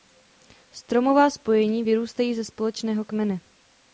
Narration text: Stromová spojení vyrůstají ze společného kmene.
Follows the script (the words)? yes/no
yes